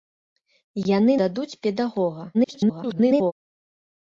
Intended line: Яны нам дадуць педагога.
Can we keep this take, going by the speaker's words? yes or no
no